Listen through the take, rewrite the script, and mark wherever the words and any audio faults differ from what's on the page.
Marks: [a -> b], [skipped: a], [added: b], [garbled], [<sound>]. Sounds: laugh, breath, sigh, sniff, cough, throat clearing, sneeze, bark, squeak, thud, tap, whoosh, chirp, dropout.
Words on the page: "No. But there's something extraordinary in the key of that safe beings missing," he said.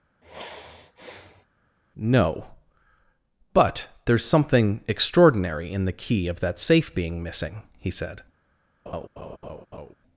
[sigh] "No. But there's something extraordinary in the key of that safe [beings -> being] missing," he said. [laugh]